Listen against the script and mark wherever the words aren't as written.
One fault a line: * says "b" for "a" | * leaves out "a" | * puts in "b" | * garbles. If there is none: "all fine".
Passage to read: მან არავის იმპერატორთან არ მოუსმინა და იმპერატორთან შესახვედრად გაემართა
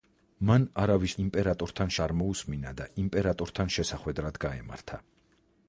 all fine